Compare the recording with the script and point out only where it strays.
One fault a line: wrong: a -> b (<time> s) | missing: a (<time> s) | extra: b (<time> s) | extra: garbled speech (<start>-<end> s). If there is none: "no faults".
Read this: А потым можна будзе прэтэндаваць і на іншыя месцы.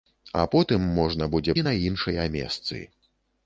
missing: прэтэндаваць (1.6 s)